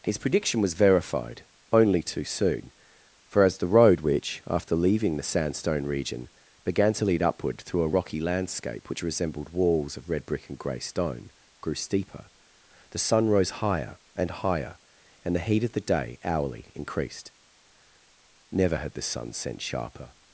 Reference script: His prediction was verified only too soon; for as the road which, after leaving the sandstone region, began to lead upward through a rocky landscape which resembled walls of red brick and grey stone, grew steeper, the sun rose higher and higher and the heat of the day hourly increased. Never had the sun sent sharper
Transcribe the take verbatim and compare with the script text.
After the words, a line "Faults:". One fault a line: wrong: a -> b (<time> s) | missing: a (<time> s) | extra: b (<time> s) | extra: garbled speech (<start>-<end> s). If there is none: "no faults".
His prediction was verified only too soon; for as the road which, after leaving the sandstone region, began to lead upward through a rocky landscape which resembled walls of red brick and grey stone, grew steeper, the sun rose higher and higher and the heat of the day hourly increased. Never had the sun sent sharper
Faults:
no faults